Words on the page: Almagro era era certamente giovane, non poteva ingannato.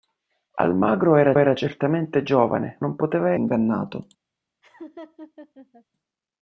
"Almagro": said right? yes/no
yes